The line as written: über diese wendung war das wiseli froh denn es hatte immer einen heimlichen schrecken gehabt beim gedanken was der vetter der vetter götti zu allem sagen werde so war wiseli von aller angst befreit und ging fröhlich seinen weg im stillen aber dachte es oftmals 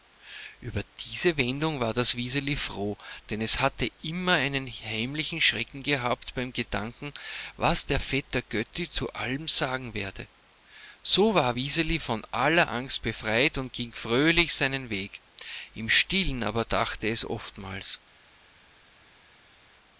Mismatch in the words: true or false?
true